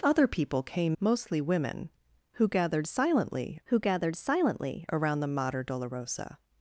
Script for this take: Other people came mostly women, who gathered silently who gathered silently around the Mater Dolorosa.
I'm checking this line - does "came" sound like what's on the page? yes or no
yes